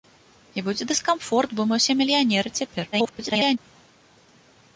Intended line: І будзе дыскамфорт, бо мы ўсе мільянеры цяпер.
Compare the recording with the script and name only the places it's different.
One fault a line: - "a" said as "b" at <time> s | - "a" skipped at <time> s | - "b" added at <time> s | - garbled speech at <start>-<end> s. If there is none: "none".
- garbled speech at 2.9-3.6 s